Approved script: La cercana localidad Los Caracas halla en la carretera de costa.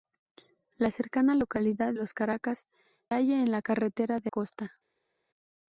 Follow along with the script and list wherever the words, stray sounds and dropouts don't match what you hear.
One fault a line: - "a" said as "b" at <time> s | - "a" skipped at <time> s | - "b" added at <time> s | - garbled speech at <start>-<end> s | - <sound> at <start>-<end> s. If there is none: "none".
none